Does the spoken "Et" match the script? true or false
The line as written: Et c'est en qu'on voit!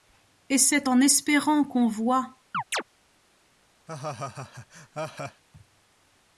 true